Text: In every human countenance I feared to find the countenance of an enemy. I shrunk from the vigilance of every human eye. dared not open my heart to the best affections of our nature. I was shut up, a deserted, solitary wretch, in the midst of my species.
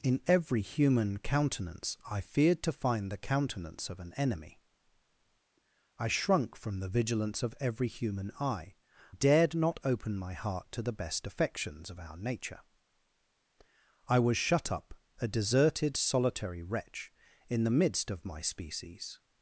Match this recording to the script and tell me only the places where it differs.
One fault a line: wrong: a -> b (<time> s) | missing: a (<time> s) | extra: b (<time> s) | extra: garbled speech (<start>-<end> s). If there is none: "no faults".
no faults